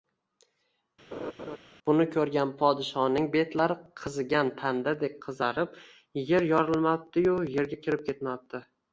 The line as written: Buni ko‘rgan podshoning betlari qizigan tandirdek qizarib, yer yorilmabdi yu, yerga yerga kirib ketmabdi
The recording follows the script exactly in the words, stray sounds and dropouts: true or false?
false